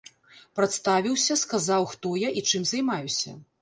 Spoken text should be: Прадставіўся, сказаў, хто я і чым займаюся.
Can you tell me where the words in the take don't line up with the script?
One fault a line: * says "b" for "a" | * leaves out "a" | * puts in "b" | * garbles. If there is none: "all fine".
all fine